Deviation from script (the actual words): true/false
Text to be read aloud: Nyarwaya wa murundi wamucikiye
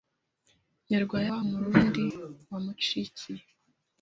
false